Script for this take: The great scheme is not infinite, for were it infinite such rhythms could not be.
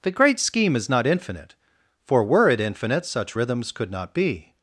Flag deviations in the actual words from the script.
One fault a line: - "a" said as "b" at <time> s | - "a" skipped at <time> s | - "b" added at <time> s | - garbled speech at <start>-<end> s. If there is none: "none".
none